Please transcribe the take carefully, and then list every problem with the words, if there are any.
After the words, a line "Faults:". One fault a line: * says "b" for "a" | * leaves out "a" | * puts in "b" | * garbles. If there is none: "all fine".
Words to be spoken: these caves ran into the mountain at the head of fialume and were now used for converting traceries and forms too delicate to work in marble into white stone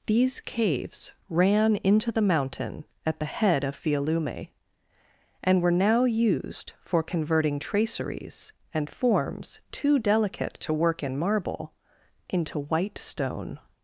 these caves ran into the mountain at the head of fialume and were now used for converting traceries and forms too delicate to work in marble into white stone
Faults:
all fine